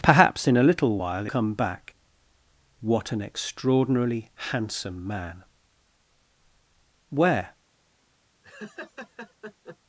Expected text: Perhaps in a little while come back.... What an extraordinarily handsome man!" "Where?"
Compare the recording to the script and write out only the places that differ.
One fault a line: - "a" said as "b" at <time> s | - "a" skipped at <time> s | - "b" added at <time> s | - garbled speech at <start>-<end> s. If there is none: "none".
none